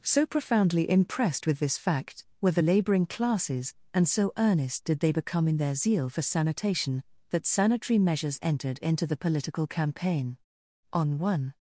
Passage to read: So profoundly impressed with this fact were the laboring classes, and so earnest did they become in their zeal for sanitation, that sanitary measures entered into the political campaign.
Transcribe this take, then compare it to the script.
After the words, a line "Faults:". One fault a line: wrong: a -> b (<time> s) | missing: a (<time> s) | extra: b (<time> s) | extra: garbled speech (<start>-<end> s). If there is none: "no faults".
So profoundly impressed with this fact were the laboring classes, and so earnest did they become in their zeal for sanitation, that sanitary measures entered into the political campaign. On one
Faults:
extra: On one (10.9 s)